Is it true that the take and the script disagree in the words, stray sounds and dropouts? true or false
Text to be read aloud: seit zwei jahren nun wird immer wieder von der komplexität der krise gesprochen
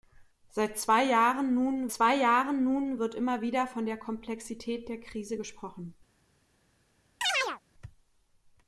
true